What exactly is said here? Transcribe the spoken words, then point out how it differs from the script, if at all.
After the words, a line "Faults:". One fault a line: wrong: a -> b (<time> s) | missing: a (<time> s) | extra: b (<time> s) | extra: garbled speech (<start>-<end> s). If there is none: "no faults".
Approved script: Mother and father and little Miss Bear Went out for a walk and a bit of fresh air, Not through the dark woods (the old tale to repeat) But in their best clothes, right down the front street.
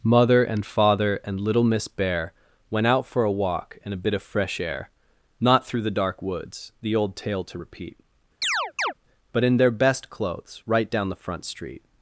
Mother and father and little Miss Bear Went out for a walk and a bit of fresh air, Not through the dark woods (the old tale to repeat) But in their best clothes, right down the front street.
Faults:
no faults